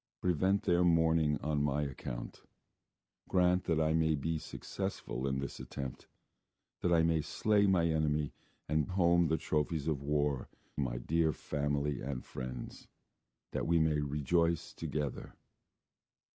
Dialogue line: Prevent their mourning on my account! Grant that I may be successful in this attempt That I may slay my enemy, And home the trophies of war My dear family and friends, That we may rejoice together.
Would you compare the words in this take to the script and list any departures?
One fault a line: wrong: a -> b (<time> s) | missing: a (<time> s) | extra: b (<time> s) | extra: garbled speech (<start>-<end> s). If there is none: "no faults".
no faults